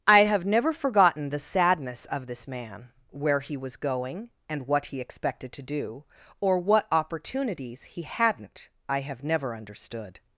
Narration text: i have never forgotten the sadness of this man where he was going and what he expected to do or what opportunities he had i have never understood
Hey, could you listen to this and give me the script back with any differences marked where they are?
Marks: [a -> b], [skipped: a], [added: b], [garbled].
i have never forgotten the sadness of this man where he was going and what he expected to do or what opportunities he [had -> hadn't] i have never understood